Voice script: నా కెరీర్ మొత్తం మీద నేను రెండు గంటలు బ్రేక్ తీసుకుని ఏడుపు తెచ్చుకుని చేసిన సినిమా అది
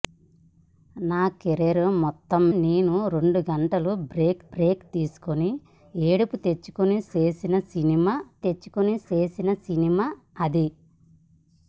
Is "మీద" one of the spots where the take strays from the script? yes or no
yes